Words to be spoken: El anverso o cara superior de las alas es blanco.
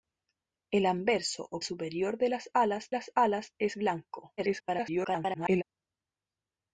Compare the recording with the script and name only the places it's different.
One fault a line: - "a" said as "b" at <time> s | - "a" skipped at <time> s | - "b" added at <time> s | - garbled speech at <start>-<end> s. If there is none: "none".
- "cara" skipped at 1.6 s
- "las alas" added at 2.9 s
- garbled speech at 4.4-5.6 s